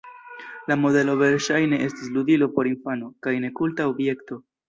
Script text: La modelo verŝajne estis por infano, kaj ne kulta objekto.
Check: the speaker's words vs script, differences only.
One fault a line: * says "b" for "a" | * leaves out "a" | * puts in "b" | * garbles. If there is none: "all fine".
* puts in "ludilo"